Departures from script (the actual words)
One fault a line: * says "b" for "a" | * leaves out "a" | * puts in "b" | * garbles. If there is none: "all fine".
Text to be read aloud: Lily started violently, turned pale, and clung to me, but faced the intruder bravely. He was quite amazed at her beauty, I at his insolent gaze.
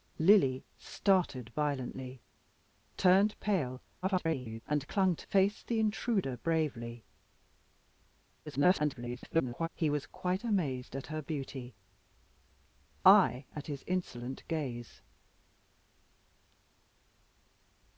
* garbles
* leaves out "me but"
* garbles